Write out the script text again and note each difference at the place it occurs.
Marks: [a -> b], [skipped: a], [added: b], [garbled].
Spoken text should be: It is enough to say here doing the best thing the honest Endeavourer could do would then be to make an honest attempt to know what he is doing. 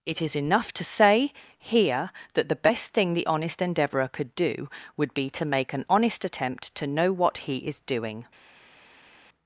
It is enough to say here [doing -> that] the best thing the honest Endeavourer could do would [skipped: then] be to make an honest attempt to know what he is doing.